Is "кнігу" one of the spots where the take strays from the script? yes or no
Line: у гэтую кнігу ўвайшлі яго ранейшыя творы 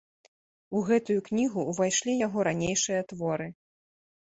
no